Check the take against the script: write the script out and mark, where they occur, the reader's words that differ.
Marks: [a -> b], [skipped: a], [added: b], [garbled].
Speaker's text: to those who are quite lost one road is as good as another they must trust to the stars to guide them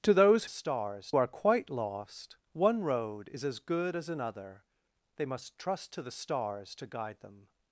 to those [who -> stars] are quite lost one road is as good as another they must trust to the stars to guide them